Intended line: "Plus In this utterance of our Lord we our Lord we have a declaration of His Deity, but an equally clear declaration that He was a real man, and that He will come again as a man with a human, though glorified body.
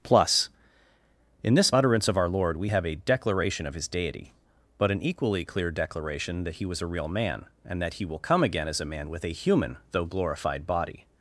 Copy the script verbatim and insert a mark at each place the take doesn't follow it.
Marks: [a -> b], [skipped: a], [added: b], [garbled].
"Plus In this utterance of our Lord we [skipped: our Lord we] have a declaration of His Deity, but an equally clear declaration that He was a real man, and that He will come again as a man with a human, though glorified body.